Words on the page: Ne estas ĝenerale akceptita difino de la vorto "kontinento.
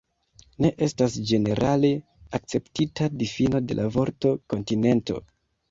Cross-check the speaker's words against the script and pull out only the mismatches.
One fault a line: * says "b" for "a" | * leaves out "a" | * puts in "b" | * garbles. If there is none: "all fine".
all fine